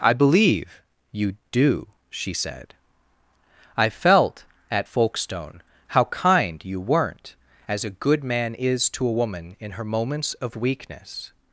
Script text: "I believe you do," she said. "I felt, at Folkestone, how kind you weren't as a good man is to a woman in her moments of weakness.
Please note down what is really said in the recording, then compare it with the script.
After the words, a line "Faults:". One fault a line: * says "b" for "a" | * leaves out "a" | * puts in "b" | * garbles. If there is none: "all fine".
"I believe you do," she said. "I felt, at Folkestone, how kind you weren't as a good man is to a woman in her moments of weakness.
Faults:
all fine